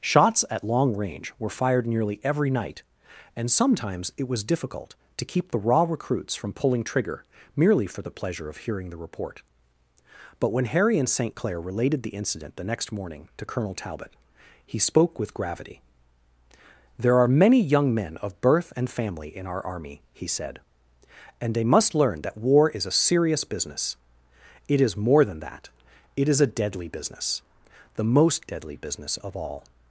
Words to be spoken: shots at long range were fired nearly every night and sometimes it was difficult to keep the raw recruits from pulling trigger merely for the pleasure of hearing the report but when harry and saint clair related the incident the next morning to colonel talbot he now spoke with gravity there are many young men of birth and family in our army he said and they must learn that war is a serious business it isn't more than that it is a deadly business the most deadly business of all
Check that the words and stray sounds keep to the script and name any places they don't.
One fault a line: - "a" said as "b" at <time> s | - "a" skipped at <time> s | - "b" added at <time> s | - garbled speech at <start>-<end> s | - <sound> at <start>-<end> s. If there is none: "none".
- "now" skipped at 14.8 s
- "isn't" said as "is" at 24.8 s